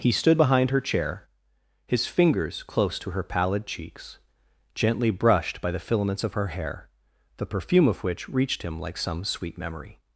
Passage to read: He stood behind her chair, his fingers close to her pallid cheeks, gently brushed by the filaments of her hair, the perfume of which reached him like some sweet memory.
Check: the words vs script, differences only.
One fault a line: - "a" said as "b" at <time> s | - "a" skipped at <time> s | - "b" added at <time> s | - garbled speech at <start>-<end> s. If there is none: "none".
none